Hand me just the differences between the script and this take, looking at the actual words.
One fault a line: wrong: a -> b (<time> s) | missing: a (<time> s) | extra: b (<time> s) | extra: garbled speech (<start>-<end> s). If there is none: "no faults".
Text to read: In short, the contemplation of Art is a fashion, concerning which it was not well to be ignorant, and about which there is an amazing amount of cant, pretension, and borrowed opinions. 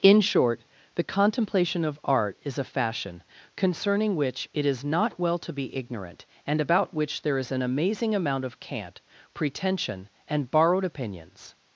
wrong: was -> is (4.7 s)